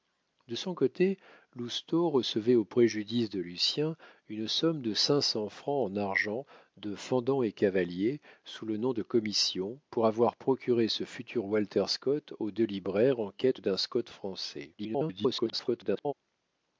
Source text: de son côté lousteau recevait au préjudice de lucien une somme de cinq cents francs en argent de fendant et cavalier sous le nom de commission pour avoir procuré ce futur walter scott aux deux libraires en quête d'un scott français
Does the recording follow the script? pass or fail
fail